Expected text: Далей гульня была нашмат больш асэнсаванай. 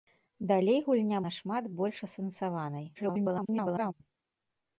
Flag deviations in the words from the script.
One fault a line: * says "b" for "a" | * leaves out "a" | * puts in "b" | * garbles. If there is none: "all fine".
* leaves out "была"
* garbles